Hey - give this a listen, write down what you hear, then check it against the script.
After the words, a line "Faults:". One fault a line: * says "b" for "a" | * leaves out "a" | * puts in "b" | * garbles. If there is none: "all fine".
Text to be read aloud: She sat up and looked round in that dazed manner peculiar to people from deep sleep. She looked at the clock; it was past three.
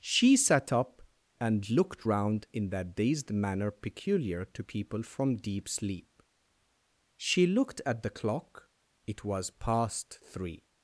She sat up and looked round in that dazed manner peculiar to people from deep sleep. She looked at the clock; it was past three.
Faults:
all fine